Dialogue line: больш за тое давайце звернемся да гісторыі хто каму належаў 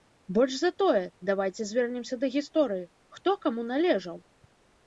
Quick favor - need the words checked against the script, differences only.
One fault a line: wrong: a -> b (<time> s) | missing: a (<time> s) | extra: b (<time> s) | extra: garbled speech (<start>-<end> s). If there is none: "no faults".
no faults